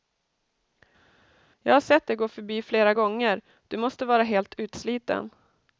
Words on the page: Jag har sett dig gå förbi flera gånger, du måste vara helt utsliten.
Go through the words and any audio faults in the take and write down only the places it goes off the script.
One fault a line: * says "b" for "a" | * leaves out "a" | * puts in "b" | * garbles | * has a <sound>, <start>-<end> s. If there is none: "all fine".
all fine